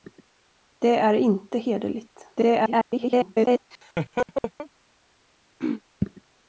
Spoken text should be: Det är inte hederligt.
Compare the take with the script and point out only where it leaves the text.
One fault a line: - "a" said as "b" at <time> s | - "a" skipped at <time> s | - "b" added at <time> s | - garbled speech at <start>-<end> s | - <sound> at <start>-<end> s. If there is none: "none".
- garbled speech at 2.3-3.6 s
- laugh at 3.7-4.7 s
- throat clearing at 5.6-5.8 s